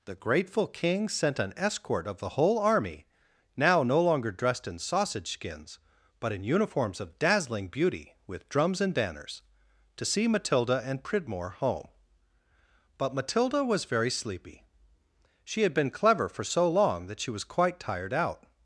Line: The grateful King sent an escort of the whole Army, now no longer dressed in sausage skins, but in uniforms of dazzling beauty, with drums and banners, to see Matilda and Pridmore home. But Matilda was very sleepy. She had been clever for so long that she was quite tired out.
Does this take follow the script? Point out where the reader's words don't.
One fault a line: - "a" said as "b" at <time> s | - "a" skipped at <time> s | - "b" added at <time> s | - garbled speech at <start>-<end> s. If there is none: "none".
none